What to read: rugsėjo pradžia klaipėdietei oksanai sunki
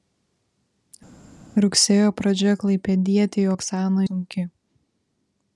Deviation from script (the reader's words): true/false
false